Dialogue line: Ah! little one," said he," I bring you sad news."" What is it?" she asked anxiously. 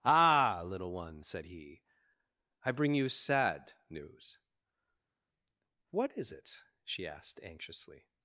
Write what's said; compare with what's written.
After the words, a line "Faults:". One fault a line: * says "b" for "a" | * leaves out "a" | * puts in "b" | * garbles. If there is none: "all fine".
Ah! little one," said he," I bring you sad news."" What is it?" she asked anxiously.
Faults:
all fine